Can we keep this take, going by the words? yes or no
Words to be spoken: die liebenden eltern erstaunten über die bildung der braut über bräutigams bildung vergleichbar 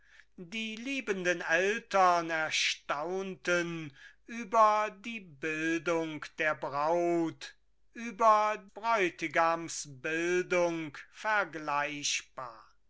yes